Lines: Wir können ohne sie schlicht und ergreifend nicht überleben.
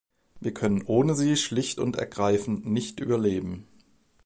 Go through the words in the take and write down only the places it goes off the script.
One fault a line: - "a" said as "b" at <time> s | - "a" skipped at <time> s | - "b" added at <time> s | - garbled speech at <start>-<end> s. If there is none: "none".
none